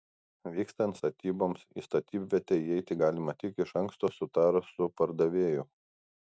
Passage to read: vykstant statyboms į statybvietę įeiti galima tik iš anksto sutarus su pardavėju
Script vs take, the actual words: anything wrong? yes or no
no